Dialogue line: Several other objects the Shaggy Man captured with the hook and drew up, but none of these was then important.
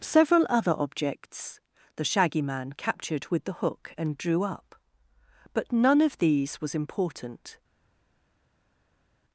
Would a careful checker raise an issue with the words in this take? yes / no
yes